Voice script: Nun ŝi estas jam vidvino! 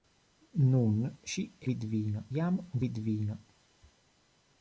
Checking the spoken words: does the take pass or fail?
fail